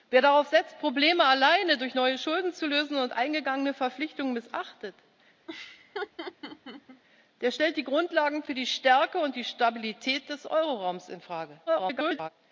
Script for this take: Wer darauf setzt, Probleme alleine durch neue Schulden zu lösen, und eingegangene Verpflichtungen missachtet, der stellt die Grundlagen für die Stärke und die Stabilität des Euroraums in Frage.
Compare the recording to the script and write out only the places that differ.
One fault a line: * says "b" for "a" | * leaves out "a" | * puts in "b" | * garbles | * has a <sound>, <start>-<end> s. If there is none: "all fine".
* has a laugh, 5.5-7.0 s
* garbles